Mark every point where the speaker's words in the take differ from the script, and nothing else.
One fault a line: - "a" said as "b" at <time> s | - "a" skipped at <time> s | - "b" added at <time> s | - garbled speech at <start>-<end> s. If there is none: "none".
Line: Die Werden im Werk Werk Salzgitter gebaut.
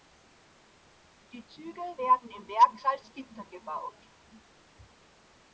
- "Züge" added at 1.4 s
- "Werk" skipped at 2.8 s